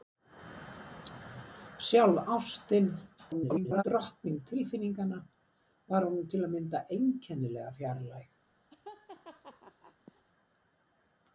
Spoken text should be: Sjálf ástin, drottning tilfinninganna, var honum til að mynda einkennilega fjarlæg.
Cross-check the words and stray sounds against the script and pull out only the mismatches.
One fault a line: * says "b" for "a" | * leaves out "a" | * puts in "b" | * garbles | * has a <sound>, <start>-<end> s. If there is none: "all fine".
* garbles
* has a laugh, 8.7-10.2 s